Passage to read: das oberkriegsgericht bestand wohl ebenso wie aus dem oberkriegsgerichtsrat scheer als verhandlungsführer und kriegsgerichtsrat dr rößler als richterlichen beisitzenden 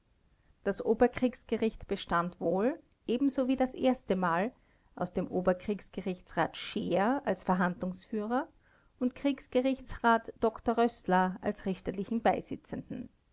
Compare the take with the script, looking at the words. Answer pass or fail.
fail